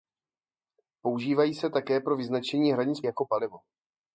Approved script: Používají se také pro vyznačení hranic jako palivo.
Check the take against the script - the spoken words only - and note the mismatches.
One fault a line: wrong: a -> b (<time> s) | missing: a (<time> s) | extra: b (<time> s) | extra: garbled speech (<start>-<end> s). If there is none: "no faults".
no faults